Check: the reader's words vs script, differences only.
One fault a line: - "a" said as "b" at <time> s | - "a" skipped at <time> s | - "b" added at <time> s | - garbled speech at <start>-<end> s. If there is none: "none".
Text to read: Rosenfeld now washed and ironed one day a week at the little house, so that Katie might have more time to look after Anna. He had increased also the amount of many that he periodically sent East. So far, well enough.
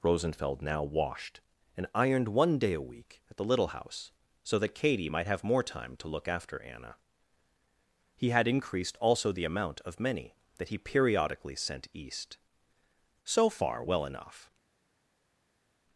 none